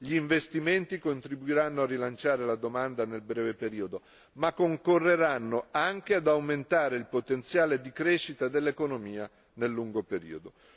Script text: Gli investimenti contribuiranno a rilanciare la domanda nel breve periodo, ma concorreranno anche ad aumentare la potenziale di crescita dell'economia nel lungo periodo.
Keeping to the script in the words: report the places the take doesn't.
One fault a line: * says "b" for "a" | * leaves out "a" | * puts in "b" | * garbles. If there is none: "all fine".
* says "il" for "la"